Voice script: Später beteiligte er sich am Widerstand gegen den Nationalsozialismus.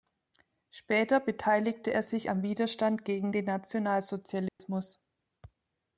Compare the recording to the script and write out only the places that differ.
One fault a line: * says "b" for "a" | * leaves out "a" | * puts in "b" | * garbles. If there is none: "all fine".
all fine